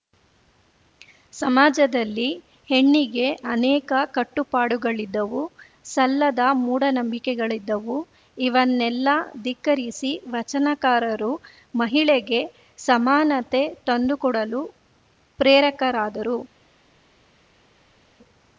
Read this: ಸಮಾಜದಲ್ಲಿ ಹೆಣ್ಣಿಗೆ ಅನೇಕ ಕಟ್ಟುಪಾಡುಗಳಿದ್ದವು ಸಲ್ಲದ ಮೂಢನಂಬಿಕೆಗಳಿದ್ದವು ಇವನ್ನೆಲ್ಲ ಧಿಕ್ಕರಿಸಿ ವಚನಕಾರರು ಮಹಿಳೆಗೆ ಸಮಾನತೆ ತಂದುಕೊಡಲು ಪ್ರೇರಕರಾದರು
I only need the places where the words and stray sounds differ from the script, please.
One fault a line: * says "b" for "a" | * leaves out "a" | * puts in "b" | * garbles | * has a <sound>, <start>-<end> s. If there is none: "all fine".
all fine